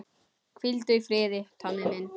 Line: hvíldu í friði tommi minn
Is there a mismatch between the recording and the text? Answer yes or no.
no